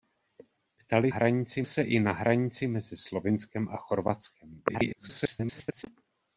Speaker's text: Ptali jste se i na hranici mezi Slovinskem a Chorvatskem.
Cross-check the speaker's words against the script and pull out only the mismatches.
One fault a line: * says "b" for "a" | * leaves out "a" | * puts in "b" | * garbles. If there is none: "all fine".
* says "hranici" for "jste"
* garbles